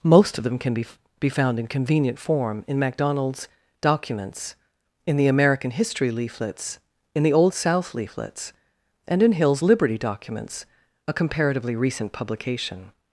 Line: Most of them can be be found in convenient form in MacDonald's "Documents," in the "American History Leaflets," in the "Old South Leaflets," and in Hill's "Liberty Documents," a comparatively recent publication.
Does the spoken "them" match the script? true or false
true